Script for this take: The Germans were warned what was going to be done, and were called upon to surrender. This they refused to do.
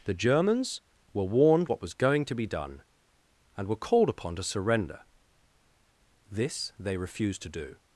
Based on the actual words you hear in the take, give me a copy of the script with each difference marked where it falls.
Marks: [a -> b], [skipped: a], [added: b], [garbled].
The Germans were warned what was going to be done, and were called upon to surrender. This they refused to do.